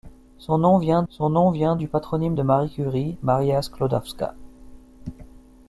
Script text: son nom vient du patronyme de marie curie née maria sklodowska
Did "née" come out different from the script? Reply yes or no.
yes